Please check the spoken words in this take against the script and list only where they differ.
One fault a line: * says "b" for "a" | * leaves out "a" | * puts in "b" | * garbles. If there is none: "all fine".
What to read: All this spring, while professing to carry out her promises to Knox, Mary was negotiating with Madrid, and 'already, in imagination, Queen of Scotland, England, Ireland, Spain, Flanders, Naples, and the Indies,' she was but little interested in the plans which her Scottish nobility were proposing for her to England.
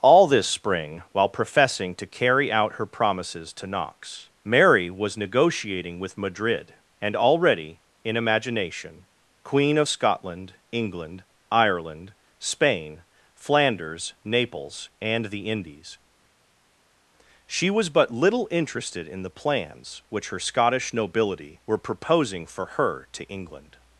all fine